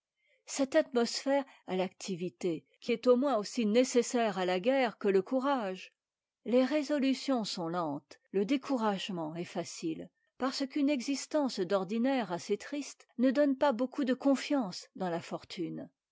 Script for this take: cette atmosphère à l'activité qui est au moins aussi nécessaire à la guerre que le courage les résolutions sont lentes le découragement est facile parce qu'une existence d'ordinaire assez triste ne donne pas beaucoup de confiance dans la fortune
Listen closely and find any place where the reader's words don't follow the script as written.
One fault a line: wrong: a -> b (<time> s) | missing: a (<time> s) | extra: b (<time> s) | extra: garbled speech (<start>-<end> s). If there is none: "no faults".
no faults